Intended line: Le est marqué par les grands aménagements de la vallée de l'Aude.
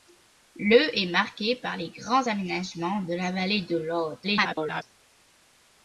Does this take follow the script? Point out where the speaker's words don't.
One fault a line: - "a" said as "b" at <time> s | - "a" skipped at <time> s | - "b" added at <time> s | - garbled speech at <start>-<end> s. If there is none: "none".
- garbled speech at 4.2-4.8 s